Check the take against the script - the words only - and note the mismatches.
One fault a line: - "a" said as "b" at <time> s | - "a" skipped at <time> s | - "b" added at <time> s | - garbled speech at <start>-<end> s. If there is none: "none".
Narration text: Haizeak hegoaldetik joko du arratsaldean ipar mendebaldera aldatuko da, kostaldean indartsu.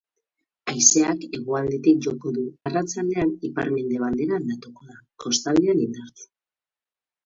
none